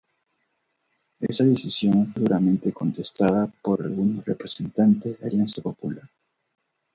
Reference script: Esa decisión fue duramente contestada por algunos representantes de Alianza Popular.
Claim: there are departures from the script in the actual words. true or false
true